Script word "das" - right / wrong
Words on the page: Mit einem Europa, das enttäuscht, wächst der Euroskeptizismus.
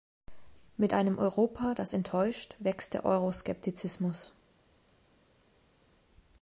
right